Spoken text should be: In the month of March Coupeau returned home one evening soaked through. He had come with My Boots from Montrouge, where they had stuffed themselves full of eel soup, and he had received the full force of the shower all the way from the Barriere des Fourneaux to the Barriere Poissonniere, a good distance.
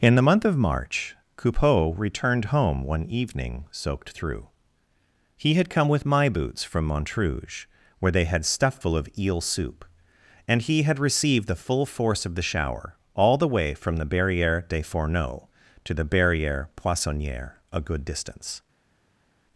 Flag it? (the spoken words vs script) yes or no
yes